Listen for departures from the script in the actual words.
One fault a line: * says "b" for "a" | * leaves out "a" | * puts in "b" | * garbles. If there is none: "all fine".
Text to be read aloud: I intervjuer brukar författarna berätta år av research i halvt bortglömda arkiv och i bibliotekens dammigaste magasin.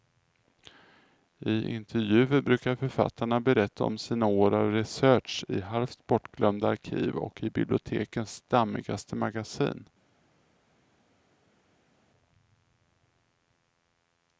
* puts in "om sina"